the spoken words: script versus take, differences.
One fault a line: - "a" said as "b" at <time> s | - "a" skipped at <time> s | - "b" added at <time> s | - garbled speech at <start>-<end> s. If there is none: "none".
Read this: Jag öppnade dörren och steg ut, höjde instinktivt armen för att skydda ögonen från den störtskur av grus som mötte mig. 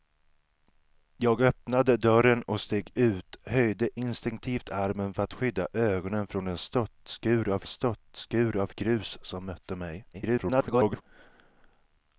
- "störtskur av" added at 7.7 s
- garbled speech at 10.1-11.0 s